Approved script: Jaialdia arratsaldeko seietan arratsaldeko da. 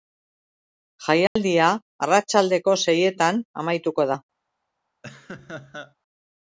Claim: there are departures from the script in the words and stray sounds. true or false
true